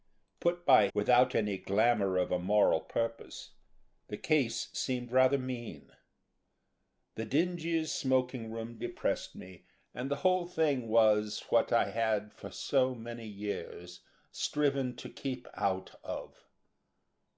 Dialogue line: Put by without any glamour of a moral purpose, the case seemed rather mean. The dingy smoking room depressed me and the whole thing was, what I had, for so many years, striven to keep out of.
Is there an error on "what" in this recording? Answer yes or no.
no